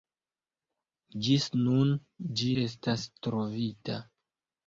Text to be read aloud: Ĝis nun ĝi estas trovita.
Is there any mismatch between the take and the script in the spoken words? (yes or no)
no